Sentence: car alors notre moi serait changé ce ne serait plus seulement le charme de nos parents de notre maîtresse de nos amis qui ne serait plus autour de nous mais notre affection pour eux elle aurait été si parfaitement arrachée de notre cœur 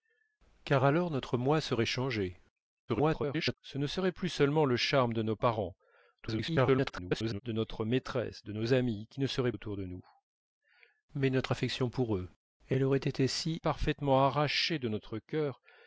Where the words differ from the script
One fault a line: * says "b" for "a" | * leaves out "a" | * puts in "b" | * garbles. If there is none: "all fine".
* garbles
* garbles
* leaves out "plus"